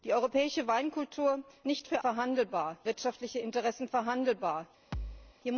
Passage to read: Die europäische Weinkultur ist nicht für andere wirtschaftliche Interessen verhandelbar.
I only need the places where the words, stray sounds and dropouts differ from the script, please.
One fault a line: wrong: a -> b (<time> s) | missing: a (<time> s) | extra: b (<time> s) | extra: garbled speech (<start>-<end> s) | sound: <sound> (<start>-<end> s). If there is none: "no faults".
missing: ist (1.4 s)
wrong: andere -> verhandelbar (2.0 s)
sound: thud (4.9-5.4 s)